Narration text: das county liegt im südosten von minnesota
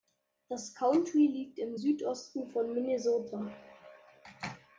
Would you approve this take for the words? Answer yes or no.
yes